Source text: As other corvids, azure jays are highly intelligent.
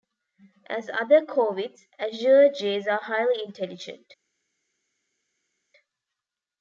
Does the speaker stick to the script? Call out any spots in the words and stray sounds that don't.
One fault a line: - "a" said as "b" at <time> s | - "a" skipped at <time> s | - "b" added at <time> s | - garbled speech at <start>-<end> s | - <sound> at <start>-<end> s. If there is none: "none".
none